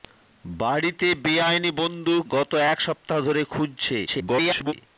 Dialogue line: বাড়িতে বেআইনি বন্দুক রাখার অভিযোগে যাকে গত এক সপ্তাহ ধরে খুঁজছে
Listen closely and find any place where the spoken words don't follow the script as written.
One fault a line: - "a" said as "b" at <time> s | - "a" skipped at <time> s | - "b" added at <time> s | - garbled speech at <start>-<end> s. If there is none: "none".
- "রাখার অভিযোগে যাকে" skipped at 2.2 s
- garbled speech at 4.1-4.7 s